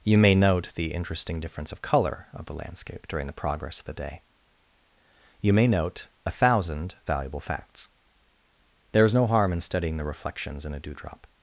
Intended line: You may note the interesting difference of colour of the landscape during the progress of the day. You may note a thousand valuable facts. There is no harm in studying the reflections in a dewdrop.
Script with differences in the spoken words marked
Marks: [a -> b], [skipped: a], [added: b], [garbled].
You may note the interesting difference of colour of the landscape during the progress of the day. You may note a thousand valuable facts. There is no harm in studying the reflections in a dewdrop.